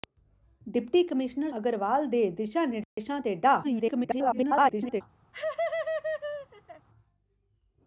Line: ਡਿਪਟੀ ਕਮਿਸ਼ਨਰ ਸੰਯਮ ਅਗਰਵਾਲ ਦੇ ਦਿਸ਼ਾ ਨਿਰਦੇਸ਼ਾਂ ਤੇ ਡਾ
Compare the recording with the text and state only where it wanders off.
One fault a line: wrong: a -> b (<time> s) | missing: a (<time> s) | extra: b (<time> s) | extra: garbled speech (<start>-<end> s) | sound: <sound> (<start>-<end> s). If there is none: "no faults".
missing: ਸੰਯਮ (1.5 s)
sound: dropout (2.8-3.0 s)
extra: garbled speech (3.6-5.0 s)
sound: laugh (5.3-6.9 s)